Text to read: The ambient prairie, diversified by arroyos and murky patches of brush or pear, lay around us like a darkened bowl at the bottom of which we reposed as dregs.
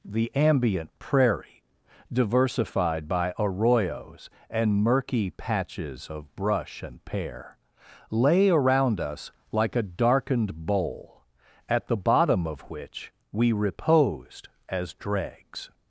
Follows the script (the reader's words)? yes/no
no